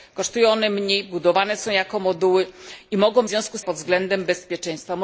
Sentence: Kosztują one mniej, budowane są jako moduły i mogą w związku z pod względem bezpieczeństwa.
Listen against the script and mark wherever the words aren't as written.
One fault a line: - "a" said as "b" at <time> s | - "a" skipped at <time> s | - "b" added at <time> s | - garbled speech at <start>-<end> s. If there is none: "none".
none